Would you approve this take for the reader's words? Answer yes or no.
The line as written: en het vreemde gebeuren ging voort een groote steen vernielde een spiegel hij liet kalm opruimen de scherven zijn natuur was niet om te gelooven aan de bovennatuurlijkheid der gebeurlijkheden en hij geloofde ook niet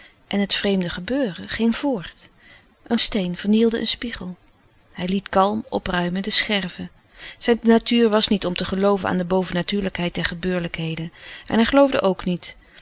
no